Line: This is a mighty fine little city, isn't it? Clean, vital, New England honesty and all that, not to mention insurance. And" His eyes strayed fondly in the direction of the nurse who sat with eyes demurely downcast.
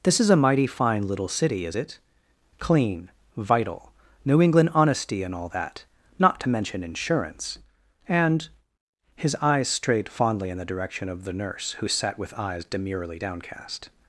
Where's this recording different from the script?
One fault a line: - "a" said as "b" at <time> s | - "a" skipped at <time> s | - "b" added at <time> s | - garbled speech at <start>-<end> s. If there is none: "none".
- "isn't" said as "is" at 1.6 s